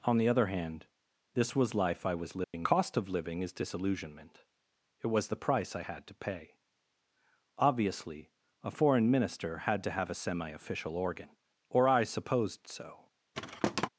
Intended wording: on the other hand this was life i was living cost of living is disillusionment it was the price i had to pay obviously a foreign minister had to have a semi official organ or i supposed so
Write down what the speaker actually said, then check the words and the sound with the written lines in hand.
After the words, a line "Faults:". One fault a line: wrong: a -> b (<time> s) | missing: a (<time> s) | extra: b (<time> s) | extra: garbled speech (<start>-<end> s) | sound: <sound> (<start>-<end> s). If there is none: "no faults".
on the other hand this was life i was living cost of living is disillusionment it was the price i had to pay obviously a foreign minister had to have a semi official organ or i supposed so
Faults:
sound: dropout (2.4-2.5 s)
sound: thud (13.3-13.9 s)